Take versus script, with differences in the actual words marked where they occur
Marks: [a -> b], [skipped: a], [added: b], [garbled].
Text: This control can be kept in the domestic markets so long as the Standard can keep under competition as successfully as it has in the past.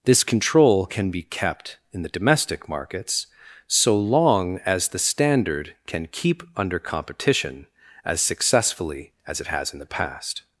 This control can be kept in the domestic markets so long as the Standard can keep under competition as successfully as it has in the past.